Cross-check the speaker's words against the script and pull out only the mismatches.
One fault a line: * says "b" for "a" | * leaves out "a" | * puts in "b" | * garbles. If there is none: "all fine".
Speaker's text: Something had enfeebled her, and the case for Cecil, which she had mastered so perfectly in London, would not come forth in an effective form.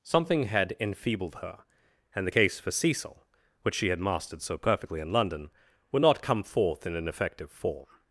all fine